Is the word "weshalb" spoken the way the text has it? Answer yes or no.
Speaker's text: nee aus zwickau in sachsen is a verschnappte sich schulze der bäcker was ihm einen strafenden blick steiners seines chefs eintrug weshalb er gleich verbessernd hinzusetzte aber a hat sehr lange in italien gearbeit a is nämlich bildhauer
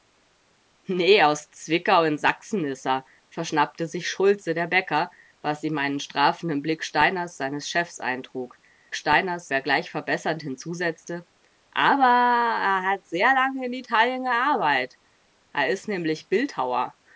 no